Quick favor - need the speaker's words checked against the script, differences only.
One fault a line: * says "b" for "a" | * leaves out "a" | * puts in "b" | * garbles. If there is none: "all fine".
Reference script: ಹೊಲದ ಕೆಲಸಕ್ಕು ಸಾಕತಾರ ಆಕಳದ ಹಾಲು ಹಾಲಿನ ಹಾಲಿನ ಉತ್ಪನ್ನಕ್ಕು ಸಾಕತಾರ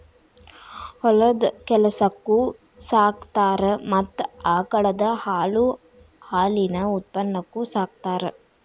* puts in "ಮತ್ತ"
* leaves out "ಹಾಲಿನ"